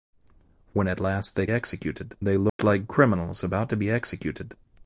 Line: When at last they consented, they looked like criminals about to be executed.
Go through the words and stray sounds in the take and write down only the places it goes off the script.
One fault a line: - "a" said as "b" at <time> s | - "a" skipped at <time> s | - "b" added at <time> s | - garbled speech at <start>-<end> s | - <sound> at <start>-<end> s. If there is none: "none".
- "consented" said as "executed" at 1.5 s
- dropout at 2.5-2.6 s